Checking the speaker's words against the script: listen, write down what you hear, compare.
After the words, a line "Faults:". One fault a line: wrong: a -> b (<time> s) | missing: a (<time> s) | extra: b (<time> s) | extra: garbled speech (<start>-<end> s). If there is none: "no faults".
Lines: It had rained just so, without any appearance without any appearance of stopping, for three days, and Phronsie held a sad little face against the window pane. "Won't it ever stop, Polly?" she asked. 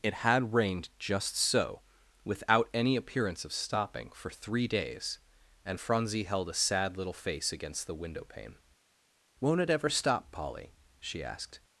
It had rained just so, without any appearance of stopping, for three days, and Phronsie held a sad little face against the window pane. "Won't it ever stop, Polly?" she asked.
Faults:
missing: without any appearance (3.5 s)